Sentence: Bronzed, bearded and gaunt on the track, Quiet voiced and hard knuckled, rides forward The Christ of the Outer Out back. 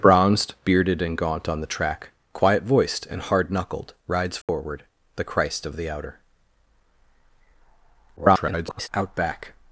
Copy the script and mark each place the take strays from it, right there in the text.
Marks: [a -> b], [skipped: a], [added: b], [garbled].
Bronzed, bearded and gaunt on the track, Quiet voiced and hard knuckled, rides forward The Christ of the Outer [garbled] Out back.